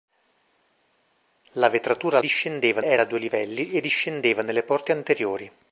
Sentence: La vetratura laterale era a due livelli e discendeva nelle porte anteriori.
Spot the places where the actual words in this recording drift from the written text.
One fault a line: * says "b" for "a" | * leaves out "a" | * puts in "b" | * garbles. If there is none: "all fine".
* says "discendeva" for "laterale"